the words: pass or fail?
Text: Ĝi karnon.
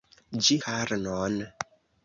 pass